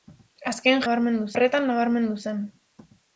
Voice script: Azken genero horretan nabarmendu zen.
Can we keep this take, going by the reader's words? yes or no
no